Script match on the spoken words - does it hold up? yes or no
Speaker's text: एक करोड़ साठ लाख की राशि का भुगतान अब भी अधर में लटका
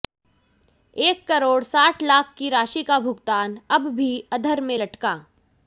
yes